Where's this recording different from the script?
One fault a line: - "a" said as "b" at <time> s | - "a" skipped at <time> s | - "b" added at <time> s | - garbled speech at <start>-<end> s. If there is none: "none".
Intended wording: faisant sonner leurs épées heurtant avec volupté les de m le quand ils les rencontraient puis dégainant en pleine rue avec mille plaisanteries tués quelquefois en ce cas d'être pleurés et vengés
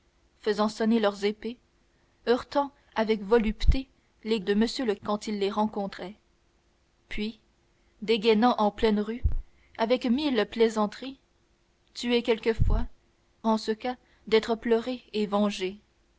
none